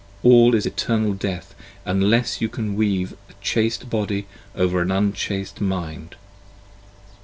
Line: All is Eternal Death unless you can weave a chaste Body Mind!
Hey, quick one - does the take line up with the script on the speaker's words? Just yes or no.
no